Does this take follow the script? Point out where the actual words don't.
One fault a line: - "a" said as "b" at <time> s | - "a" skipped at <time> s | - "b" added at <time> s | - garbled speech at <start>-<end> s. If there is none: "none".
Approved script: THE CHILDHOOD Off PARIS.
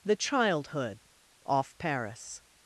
none